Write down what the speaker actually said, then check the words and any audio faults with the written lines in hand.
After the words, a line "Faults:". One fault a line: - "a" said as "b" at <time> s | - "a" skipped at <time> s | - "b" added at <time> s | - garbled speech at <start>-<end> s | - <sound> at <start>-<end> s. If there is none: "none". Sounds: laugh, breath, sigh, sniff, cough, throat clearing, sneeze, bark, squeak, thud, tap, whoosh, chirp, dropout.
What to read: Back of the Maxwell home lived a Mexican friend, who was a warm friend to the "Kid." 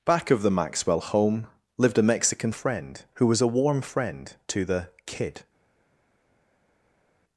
Back of the Maxwell home lived a Mexican friend, who was a warm friend to the "Kid."
Faults:
none